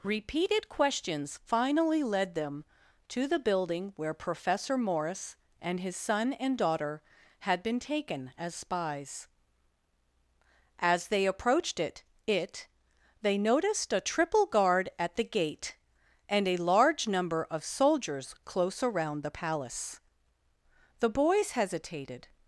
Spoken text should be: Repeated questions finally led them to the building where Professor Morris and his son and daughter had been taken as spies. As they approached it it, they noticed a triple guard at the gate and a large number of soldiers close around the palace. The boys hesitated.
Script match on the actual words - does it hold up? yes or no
yes